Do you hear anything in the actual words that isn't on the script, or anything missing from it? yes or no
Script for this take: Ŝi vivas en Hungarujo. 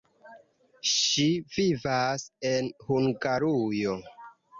no